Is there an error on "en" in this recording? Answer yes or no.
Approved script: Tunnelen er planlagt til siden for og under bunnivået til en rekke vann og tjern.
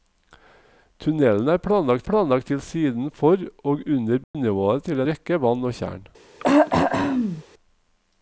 yes